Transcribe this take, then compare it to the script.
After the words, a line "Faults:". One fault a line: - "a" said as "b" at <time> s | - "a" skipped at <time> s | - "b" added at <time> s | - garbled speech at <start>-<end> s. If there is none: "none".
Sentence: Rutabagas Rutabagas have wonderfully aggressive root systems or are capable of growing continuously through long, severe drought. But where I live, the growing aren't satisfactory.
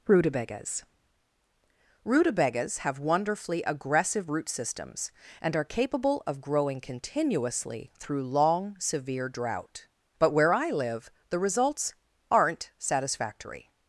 Rutabagas Rutabagas have wonderfully aggressive root systems and are capable of growing continuously through long, severe drought. But where I live, the results aren't satisfactory.
Faults:
- "or" said as "and" at 5.4 s
- "growing" said as "results" at 11.4 s